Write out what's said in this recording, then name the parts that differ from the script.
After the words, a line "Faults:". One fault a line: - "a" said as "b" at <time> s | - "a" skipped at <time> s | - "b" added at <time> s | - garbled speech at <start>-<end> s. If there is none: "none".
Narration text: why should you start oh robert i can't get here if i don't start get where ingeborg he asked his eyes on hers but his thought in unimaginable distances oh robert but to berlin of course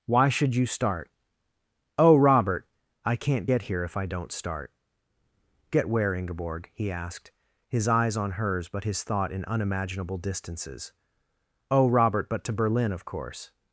why should you start oh robert i can't get here if i don't start get where ingeborg he asked his eyes on hers but his thought in unimaginable distances oh robert but to berlin of course
Faults:
none